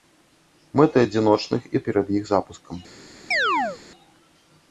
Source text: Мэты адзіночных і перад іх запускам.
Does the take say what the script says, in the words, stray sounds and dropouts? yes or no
no